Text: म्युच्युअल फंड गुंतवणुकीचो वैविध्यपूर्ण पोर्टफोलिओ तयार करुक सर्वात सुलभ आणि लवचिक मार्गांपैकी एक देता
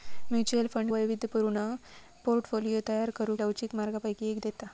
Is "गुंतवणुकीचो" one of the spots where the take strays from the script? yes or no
yes